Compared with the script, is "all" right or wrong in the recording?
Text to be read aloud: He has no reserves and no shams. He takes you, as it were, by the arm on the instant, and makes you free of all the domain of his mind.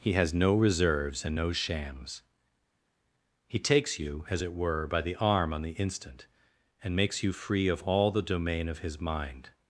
right